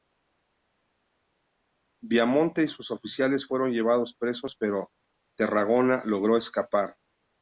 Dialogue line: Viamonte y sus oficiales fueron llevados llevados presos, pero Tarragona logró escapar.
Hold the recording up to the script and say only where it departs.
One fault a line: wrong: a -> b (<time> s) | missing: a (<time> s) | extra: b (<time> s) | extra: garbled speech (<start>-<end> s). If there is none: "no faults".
missing: llevados (4.2 s)